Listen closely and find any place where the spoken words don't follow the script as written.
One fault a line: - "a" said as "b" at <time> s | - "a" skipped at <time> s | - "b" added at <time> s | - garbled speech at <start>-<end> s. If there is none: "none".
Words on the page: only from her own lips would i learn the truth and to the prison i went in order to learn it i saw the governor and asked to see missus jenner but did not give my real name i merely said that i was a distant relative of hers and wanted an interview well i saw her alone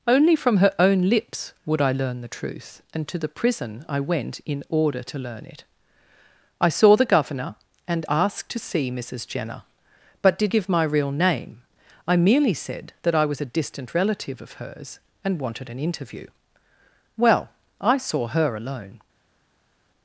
- "not" skipped at 10.5 s